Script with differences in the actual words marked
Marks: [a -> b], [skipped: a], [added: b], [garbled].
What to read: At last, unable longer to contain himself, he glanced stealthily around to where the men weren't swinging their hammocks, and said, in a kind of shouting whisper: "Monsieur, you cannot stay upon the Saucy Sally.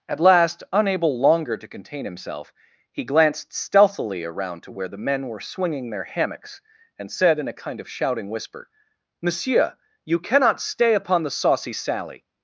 At last, unable longer to contain himself, he glanced stealthily around to where the men [weren't -> were] swinging their hammocks, and said, in a kind of shouting whisper: "Monsieur, you cannot stay upon the Saucy Sally.